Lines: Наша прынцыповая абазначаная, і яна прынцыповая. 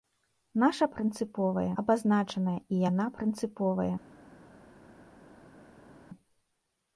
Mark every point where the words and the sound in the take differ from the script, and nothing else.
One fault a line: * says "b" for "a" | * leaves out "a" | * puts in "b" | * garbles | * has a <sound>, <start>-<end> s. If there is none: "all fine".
all fine